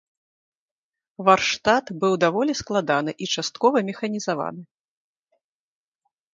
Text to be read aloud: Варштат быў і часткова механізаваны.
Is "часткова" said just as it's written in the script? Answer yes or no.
yes